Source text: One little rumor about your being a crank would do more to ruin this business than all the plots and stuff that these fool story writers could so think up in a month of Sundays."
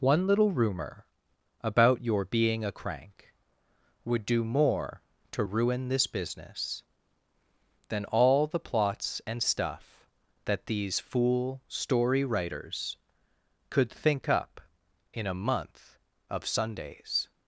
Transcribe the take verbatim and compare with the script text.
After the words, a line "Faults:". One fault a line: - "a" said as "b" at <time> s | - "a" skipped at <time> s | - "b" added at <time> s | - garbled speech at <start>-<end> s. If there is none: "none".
One little rumor about your being a crank would do more to ruin this business than all the plots and stuff that these fool story writers could think up in a month of Sundays."
Faults:
- "so" skipped at 13.9 s